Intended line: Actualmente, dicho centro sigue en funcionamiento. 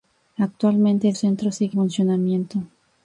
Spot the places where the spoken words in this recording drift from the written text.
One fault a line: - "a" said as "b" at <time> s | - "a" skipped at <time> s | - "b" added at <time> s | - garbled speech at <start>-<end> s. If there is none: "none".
- "dicho" skipped at 1.1 s
- "en" skipped at 1.8 s